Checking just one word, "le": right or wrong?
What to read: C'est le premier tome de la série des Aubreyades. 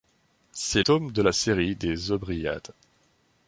wrong